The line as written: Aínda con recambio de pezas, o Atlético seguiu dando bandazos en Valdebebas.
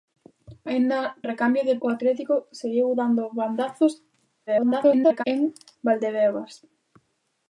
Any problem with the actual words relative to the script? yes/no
yes